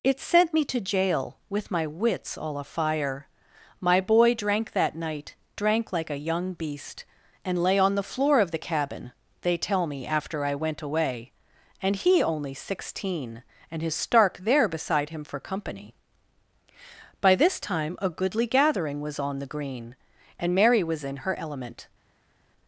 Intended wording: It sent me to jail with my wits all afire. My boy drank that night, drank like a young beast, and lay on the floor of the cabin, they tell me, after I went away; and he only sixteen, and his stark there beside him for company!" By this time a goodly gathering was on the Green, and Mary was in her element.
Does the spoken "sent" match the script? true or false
true